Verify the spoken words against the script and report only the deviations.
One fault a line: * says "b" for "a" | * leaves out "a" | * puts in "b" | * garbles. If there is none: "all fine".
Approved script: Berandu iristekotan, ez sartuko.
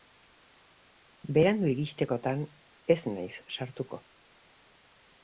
* puts in "naiz"